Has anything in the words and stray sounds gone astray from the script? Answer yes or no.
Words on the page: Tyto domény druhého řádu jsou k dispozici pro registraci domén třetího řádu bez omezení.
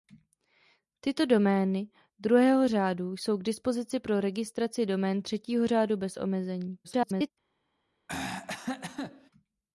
yes